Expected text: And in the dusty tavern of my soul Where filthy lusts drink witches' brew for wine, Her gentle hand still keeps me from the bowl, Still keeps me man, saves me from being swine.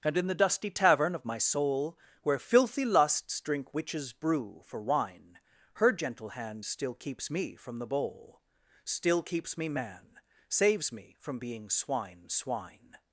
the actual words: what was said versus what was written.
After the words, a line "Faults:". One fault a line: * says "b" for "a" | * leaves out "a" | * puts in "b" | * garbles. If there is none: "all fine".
And in the dusty tavern of my soul Where filthy lusts drink witches' brew for wine, Her gentle hand still keeps me from the bowl, Still keeps me man, saves me from being swine swine.
Faults:
* puts in "swine"